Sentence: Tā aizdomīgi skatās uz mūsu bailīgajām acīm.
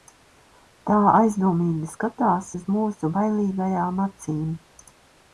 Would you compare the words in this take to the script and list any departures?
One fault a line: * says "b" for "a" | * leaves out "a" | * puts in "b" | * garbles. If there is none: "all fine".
all fine